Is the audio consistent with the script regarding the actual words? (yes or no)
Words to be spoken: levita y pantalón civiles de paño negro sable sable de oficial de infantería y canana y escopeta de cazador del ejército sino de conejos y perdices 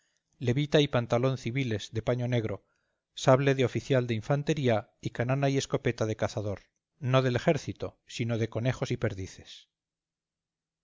no